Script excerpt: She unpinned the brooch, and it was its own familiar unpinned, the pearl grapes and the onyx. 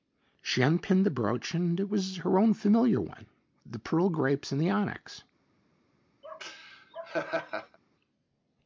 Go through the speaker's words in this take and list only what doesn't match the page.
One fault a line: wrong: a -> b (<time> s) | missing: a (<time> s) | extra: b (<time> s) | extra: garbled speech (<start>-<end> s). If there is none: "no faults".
wrong: its -> her (2.2 s)
wrong: unpinned -> one (3.0 s)